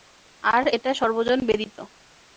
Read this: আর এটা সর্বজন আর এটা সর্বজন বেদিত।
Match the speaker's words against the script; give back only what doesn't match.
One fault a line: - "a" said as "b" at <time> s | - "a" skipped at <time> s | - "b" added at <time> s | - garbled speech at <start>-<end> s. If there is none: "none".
- "আর এটা সর্বজন" skipped at 1.4 s